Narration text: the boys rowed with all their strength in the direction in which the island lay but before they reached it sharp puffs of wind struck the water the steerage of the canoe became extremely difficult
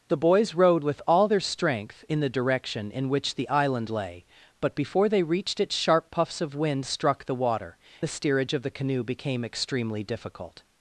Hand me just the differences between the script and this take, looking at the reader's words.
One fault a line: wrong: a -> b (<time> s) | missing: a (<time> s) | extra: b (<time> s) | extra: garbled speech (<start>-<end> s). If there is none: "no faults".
no faults